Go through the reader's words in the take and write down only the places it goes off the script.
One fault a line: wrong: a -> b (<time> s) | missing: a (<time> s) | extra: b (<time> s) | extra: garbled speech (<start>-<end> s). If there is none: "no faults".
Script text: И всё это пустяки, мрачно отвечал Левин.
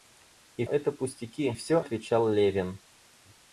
missing: всё (0.7 s)
wrong: мрачно -> всё (1.5 s)